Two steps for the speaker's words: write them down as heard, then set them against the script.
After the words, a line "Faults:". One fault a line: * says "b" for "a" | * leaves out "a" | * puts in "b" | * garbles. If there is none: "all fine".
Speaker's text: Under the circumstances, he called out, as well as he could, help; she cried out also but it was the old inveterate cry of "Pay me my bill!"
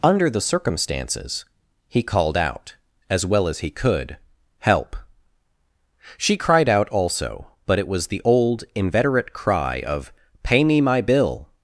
Under the circumstances, he called out, as well as he could, help; she cried out also but it was the old inveterate cry of "Pay me my bill!"
Faults:
all fine